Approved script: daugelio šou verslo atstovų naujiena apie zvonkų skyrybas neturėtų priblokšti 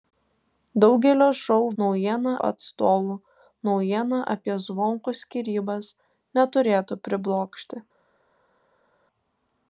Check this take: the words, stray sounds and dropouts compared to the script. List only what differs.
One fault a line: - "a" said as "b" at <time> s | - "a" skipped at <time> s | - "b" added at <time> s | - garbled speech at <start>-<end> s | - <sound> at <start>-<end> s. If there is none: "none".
- "verslo" said as "naujiena" at 1.8 s